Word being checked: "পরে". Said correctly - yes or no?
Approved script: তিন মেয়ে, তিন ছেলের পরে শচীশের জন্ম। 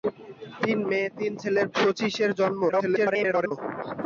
no